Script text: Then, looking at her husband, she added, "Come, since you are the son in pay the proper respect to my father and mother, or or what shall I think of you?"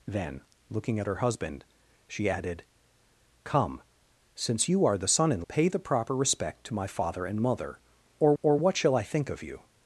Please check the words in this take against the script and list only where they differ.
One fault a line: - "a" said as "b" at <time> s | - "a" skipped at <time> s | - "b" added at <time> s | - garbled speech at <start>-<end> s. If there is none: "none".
none